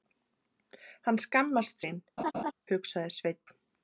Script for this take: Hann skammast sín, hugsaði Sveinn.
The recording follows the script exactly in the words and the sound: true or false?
false